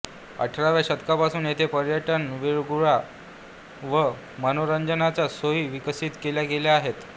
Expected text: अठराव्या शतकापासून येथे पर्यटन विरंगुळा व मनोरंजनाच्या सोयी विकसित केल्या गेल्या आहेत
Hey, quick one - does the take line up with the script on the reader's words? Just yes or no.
yes